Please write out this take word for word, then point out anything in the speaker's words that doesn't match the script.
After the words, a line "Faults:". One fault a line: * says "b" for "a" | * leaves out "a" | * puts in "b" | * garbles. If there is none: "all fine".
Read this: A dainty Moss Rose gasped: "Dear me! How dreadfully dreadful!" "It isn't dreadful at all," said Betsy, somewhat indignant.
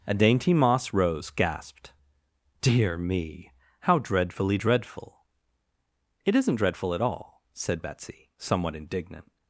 A dainty Moss Rose gasped: "Dear me! How dreadfully dreadful!" "It isn't dreadful at all," said Betsy, somewhat indignant.
Faults:
all fine